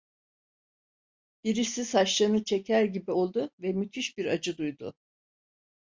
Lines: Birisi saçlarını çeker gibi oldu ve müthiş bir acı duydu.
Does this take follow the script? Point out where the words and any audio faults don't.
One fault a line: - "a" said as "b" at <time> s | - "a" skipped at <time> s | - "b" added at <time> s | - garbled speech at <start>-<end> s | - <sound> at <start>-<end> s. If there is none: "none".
none